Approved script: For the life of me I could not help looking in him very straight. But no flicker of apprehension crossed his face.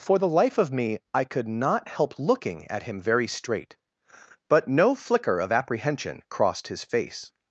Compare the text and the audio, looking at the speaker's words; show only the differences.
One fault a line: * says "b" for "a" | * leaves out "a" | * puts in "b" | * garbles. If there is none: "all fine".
* says "at" for "in"